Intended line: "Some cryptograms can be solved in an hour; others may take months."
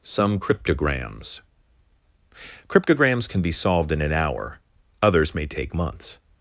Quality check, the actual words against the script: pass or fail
fail